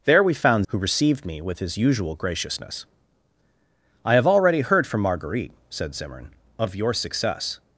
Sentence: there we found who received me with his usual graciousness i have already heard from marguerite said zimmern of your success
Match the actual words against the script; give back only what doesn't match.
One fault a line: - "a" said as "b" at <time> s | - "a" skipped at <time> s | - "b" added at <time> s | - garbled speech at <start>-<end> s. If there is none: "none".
none